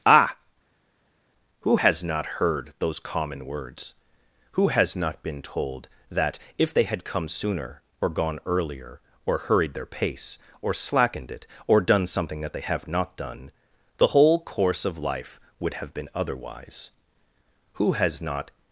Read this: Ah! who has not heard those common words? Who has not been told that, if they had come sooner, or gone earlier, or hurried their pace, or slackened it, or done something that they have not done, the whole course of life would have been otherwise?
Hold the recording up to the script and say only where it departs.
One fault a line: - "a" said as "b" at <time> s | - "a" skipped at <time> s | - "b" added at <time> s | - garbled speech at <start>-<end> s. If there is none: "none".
- "Who has not" added at 17.7 s